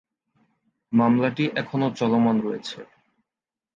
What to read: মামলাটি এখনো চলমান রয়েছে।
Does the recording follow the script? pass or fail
pass